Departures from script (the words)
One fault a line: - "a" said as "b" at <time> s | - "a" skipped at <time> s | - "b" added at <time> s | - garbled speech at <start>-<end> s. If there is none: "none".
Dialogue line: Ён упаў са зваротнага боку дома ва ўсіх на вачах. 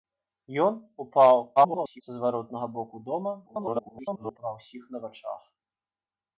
- garbled speech at 1.6-2.0 s
- garbled speech at 3.5-4.4 s